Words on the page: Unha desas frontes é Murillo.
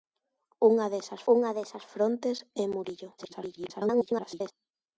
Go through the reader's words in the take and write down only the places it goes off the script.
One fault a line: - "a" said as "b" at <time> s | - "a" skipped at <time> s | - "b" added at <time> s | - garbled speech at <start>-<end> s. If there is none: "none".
- "unha desas" added at 1.3 s
- garbled speech at 3.2-4.5 s